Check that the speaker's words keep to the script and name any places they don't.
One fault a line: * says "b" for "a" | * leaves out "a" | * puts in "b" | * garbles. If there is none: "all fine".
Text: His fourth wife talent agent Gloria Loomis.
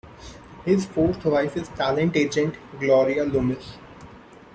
* puts in "is"